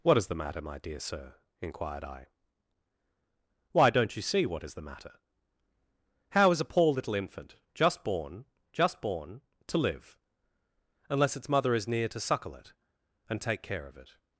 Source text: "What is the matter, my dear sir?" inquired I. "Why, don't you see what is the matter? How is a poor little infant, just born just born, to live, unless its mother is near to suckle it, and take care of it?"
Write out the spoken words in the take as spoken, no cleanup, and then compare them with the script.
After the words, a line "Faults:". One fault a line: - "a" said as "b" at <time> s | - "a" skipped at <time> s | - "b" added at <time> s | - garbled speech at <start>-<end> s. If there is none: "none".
"What is the matter, my dear sir?" inquired I. "Why, don't you see what is the matter? How is a poor little infant, just born just born, to live, unless its mother is near to suckle it, and take care of it?"
Faults:
none